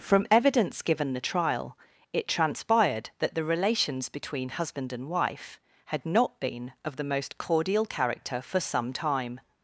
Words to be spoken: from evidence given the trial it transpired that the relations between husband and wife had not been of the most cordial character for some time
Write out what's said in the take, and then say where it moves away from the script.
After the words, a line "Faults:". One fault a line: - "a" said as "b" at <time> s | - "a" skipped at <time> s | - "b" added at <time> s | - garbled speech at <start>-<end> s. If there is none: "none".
from evidence given the trial it transpired that the relations between husband and wife had not been of the most cordial character for some time
Faults:
none